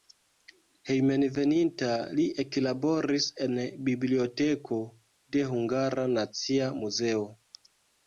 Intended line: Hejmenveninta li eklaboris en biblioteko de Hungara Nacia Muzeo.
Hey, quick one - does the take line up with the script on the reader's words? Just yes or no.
yes